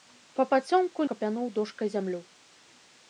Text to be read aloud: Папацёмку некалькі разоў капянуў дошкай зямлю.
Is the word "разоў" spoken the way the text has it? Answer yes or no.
no